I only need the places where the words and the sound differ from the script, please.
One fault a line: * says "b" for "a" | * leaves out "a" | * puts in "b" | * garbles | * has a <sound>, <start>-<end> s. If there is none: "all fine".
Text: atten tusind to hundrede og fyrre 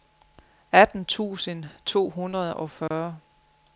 * has a dropout, 2.9-2.9 s